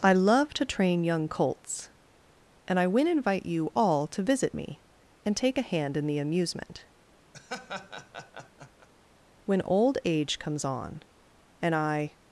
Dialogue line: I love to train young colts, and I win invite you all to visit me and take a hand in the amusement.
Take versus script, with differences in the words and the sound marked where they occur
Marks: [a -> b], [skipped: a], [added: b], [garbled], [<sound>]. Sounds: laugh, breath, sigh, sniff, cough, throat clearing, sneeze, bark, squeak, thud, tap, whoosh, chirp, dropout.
I love to train young colts, and I win invite you all to visit me and take a hand in the amusement. [laugh] [added: When old age comes on and I]